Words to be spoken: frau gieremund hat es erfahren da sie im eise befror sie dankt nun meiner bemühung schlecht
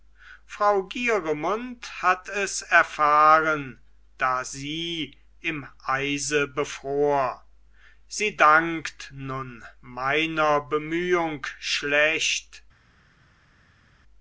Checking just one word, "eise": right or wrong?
right